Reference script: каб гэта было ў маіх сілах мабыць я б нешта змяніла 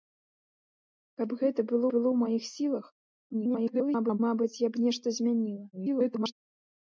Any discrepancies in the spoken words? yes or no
yes